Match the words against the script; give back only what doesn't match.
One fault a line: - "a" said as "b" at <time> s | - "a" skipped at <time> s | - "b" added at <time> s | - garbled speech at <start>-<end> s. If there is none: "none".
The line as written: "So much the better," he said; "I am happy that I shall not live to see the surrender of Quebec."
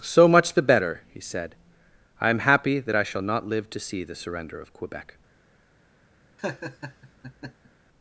none